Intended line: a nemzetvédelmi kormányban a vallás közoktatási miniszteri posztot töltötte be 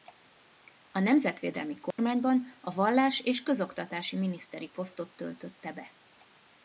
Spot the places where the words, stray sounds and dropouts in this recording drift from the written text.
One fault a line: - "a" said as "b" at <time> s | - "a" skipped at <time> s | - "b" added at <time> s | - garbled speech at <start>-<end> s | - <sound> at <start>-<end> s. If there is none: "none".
- dropout at 1.9-2.0 s
- "és" added at 3.2 s